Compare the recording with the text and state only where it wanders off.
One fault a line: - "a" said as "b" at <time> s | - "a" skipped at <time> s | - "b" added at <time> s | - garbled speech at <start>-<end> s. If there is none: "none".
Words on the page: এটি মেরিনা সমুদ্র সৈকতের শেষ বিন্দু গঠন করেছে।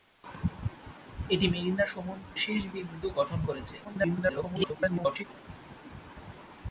- "সৈকতের" skipped at 2.4 s
- garbled speech at 3.8-5.2 s